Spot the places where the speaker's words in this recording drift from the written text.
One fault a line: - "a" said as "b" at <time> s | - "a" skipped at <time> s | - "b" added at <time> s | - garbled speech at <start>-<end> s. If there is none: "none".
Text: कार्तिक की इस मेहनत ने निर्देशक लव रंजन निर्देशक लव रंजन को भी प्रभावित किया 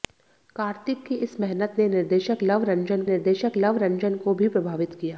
none